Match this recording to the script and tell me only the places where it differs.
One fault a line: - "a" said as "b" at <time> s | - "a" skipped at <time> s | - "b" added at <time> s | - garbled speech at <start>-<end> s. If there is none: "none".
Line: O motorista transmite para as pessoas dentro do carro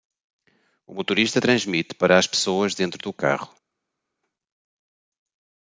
none